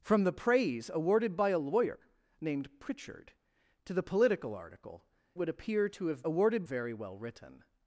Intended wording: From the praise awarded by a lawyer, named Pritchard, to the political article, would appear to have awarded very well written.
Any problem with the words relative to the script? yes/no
no